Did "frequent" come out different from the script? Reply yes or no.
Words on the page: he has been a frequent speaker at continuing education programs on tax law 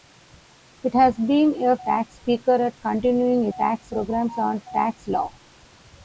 yes